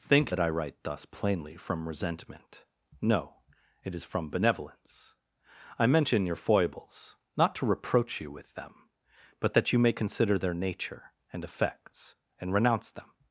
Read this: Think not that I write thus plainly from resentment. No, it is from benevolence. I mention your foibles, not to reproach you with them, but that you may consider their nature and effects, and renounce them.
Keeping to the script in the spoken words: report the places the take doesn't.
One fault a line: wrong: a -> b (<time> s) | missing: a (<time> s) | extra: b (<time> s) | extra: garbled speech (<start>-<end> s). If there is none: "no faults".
missing: not (0.3 s)